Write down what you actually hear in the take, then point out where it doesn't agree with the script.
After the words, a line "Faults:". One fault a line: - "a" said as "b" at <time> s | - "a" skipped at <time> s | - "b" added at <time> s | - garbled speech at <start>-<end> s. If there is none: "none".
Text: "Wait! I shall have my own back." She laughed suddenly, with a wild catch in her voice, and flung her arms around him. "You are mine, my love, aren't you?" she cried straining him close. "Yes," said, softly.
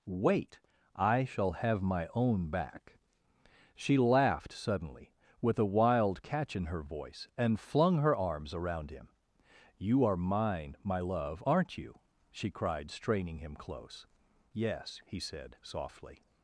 "Wait! I shall have my own back." She laughed suddenly, with a wild catch in her voice, and flung her arms around him. "You are mine, my love, aren't you?" she cried straining him close. "Yes," he said, softly.
Faults:
- "he" added at 15.0 s